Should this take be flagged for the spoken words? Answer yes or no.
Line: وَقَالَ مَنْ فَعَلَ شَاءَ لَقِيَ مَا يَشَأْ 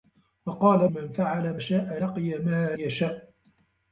no